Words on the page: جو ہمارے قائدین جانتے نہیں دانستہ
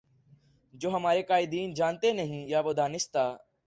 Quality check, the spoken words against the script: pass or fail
fail